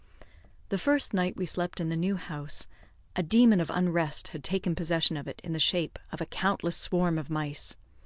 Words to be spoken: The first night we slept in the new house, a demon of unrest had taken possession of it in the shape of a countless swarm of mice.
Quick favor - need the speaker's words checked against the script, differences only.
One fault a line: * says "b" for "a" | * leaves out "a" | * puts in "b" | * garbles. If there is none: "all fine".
all fine